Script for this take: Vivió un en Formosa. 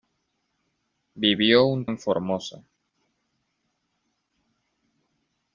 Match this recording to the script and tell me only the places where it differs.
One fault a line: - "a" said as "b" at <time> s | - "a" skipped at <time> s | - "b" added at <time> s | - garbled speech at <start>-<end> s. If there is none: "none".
none